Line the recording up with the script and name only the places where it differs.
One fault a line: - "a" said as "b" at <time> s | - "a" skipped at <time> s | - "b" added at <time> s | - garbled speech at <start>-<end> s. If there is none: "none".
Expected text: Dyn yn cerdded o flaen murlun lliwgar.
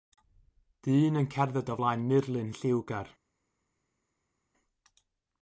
none